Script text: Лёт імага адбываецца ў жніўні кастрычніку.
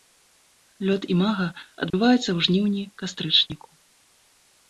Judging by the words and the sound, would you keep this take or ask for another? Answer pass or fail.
fail